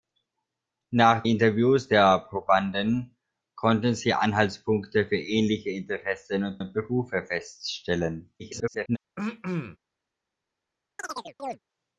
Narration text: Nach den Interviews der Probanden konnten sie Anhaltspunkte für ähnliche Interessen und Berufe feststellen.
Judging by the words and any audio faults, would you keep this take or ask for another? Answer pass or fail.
fail